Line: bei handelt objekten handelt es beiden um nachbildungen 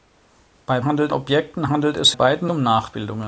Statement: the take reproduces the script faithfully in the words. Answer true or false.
true